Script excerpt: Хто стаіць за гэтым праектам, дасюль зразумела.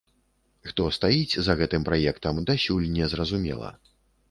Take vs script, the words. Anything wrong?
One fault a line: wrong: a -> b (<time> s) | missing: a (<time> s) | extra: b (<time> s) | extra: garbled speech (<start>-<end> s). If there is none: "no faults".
extra: не (3.0 s)